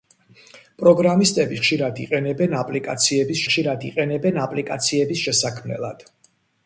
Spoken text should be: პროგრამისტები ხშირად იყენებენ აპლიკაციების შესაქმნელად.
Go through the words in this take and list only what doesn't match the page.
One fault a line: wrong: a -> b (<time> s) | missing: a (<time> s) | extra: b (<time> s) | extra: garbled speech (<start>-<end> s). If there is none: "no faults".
extra: ხშირად იყენებენ აპლიკაციების (3.5 s)